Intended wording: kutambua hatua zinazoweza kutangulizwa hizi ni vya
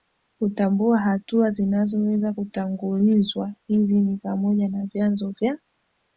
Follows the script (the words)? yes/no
no